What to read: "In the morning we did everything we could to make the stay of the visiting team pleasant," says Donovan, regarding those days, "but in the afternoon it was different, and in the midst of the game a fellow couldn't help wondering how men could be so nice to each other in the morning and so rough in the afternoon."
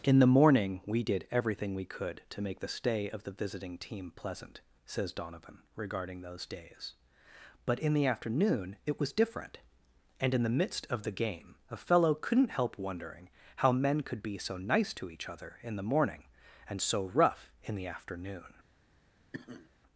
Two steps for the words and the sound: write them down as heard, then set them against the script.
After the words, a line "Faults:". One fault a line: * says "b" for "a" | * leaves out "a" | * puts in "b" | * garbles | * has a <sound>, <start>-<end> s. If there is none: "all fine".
"In the morning we did everything we could to make the stay of the visiting team pleasant," says Donovan, regarding those days, "but in the afternoon it was different, and in the midst of the game a fellow couldn't help wondering how men could be so nice to each other in the morning and so rough in the afternoon."
Faults:
* has a sniff, 19.3-19.7 s